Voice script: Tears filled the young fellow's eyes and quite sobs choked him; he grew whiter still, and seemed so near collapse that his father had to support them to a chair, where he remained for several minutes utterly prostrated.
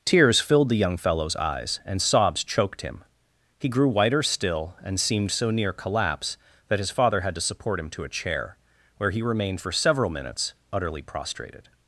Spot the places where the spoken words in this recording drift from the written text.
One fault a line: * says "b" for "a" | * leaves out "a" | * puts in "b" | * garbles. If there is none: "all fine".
* leaves out "quite"
* says "him" for "them"